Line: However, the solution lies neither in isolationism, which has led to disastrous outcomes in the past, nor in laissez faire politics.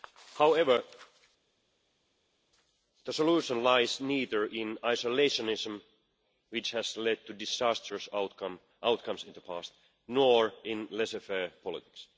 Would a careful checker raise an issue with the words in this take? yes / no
no